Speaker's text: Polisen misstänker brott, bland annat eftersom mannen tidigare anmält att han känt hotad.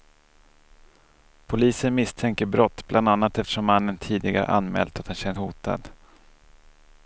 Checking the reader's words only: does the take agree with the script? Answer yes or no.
yes